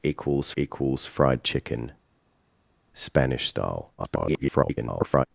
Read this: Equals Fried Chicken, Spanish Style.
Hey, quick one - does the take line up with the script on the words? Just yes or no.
no